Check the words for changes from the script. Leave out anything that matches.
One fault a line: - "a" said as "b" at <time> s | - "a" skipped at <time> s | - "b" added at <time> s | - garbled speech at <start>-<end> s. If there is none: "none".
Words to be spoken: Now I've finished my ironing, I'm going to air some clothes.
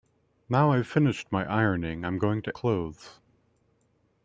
- "air some" skipped at 2.6 s